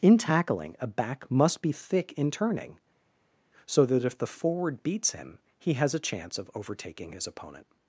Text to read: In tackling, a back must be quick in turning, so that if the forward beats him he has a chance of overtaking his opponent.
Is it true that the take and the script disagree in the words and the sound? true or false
true